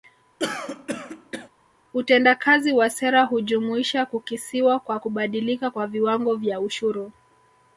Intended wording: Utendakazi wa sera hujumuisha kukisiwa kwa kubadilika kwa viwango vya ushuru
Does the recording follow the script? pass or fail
pass